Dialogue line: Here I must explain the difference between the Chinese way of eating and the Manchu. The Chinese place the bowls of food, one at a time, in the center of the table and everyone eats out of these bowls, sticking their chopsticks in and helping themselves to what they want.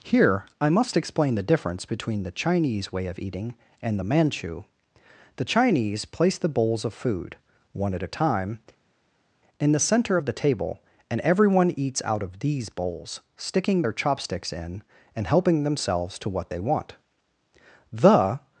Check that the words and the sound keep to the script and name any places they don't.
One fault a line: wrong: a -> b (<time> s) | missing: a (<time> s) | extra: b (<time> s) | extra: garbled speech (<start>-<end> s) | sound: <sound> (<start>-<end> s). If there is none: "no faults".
extra: The (17.9 s)